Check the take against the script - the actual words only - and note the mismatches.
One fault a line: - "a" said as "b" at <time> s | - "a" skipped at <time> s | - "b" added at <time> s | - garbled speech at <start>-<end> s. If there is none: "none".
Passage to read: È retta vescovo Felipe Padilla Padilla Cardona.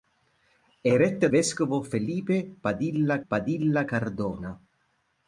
none